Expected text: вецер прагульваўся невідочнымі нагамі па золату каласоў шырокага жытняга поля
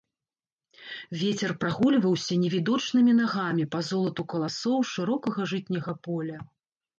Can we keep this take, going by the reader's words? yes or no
yes